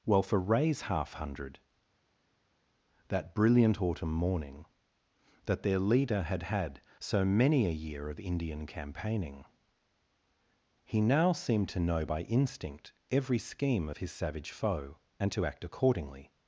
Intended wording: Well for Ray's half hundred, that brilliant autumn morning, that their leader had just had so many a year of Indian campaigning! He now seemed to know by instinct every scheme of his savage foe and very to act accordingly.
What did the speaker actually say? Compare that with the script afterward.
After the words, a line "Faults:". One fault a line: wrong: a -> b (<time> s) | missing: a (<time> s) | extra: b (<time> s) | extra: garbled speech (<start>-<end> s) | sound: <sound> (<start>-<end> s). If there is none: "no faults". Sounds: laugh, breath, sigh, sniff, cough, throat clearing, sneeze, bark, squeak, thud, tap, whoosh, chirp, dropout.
Well for Ray's half hundred, that brilliant autumn morning, that their leader had had so many a year of Indian campaigning! He now seemed to know by instinct every scheme of his savage foe and to act accordingly.
Faults:
missing: just (6.4 s)
missing: very (15.3 s)